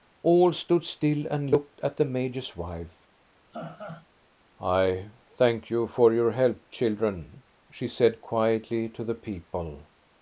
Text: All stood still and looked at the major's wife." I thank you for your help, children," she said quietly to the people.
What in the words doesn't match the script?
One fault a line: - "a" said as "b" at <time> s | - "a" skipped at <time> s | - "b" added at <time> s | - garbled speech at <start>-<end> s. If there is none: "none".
none